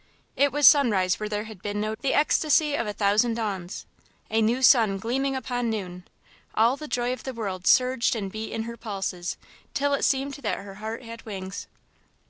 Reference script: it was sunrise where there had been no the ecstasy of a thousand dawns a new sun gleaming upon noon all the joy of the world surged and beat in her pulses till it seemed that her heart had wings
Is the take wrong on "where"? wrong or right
right